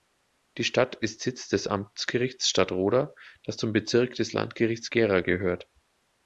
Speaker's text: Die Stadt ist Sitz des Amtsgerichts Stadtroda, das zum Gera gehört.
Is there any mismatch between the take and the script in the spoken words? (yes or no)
yes